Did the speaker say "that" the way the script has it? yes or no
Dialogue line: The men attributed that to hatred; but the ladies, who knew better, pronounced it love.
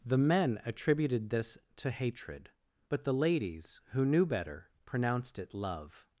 no